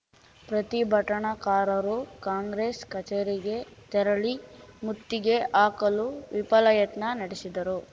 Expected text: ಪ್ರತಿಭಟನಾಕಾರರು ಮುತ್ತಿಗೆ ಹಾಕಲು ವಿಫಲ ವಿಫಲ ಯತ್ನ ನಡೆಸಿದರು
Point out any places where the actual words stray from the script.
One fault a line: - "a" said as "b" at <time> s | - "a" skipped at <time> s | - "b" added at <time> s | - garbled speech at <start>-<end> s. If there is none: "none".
- "ಕಾಂಗ್ರೆಸ್ ಕಚೇರಿಗೆ ತೆರಳಿ" added at 2.2 s
- "ವಿಫಲ" skipped at 6.7 s